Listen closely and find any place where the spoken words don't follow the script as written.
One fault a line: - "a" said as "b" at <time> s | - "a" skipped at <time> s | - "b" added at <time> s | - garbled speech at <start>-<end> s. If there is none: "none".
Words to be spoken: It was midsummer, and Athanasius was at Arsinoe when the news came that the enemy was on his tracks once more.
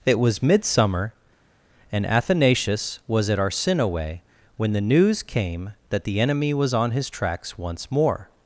none